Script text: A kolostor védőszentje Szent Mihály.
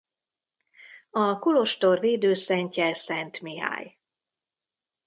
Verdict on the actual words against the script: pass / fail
pass